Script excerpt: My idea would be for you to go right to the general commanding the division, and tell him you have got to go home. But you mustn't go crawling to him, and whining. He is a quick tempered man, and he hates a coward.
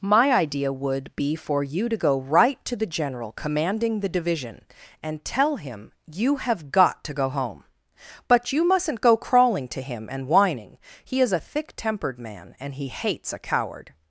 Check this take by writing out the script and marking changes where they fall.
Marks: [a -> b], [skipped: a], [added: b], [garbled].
My idea would be for you to go right to the general commanding the division, and tell him you have got to go home. But you mustn't go crawling to him, and whining. He is a [quick -> thick] tempered man, and he hates a coward.